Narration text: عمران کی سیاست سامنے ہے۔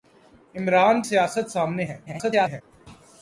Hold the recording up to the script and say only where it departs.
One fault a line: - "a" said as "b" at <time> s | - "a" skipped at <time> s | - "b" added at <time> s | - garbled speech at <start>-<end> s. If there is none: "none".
- "کی" skipped at 1.0 s
- garbled speech at 2.1-2.6 s